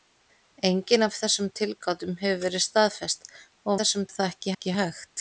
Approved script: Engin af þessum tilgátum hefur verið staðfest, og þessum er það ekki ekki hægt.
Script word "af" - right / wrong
right